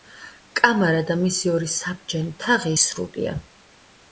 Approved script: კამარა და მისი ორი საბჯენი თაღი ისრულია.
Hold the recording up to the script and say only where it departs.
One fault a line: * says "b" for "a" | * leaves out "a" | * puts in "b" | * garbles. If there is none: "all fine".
all fine